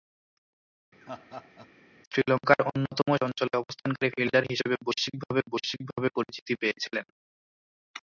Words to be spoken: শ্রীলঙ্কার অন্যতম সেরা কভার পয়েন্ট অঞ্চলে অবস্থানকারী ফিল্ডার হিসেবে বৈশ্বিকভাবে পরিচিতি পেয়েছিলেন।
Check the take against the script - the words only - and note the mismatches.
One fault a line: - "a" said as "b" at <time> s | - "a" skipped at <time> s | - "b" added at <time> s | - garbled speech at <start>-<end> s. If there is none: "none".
- "সেরা কভার পয়েন্ট" skipped at 3.1 s
- "বৈশ্বিকভাবে" added at 5.5 s